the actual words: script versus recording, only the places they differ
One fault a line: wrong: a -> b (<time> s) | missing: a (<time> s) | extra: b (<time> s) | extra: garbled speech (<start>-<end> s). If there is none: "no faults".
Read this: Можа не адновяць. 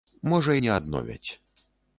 no faults